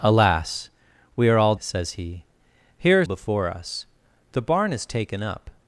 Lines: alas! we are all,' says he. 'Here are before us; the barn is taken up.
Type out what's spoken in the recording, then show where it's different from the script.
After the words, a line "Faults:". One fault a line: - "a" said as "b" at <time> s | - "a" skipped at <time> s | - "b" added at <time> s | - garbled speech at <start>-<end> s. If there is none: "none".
alas! we are all,' says he. 'Here are before us; the barn is taken up.
Faults:
none